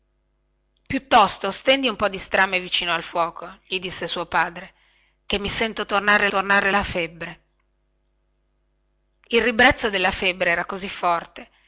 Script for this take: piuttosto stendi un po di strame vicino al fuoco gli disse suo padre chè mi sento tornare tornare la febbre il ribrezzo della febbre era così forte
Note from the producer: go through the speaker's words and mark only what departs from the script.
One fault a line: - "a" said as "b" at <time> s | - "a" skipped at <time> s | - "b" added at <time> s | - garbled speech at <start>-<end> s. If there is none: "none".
none